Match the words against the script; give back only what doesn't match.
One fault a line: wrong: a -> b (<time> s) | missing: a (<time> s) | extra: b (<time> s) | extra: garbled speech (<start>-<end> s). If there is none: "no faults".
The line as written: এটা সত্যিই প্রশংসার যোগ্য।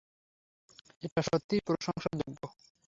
no faults